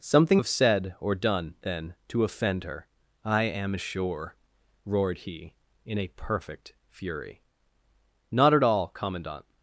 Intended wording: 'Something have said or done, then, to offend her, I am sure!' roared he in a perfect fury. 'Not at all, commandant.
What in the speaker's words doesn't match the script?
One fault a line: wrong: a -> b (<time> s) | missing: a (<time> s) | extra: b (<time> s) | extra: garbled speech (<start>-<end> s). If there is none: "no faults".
no faults